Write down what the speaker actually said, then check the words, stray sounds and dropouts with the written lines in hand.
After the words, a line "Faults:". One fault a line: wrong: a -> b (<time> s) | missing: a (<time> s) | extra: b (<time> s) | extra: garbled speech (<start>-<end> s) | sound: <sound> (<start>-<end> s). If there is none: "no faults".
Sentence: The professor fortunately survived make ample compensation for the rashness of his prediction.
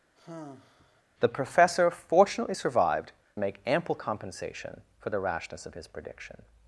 The professor fortunately survived make ample compensation for the rashness of his prediction.
Faults:
sound: sigh (0.2-1.0 s)